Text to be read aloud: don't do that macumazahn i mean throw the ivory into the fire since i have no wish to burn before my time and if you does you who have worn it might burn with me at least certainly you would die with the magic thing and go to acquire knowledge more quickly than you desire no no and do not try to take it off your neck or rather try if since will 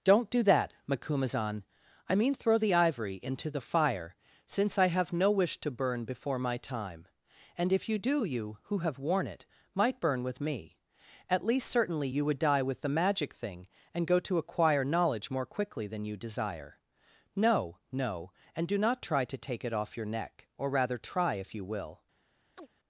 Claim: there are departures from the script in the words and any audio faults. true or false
true